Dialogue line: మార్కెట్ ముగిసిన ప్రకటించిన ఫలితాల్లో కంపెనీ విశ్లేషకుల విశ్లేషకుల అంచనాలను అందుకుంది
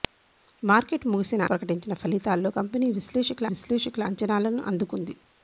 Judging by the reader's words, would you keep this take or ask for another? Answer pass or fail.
pass